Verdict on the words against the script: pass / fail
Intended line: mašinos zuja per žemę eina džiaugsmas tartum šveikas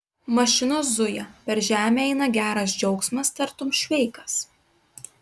fail